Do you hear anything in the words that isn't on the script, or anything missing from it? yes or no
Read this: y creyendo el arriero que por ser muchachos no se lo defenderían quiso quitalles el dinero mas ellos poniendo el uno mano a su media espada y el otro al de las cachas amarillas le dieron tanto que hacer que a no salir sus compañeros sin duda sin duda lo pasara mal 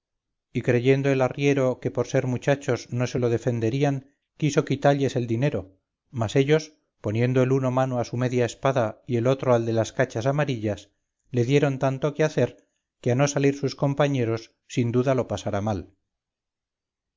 yes